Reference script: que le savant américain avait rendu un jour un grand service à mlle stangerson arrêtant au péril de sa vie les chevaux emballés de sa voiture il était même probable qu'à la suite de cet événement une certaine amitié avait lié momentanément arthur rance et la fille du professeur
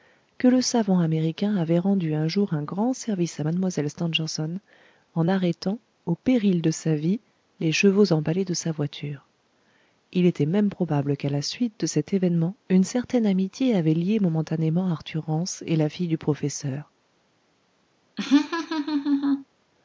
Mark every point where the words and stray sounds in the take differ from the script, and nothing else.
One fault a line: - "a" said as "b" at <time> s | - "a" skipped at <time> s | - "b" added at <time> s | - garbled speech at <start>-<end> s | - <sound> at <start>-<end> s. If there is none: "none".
- "en" added at 5.1 s
- laugh at 18.2-19.5 s